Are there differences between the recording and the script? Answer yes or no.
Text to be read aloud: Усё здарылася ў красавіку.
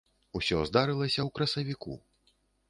no